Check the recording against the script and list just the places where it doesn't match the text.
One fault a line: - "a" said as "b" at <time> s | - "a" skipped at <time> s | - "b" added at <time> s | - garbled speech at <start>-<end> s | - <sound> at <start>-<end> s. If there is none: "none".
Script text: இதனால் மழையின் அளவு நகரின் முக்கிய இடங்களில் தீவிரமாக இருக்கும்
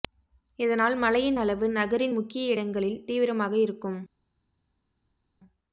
none